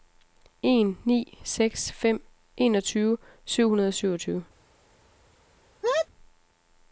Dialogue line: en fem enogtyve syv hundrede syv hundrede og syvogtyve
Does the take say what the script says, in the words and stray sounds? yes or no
no